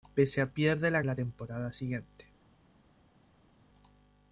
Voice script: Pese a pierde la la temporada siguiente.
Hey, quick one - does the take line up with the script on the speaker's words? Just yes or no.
yes